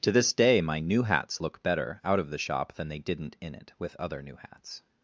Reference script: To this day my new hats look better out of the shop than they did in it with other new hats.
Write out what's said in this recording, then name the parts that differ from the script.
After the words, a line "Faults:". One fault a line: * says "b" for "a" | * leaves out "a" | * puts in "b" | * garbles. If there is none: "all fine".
To this day my new hats look better out of the shop than they didn't in it with other new hats.
Faults:
* says "didn't" for "did"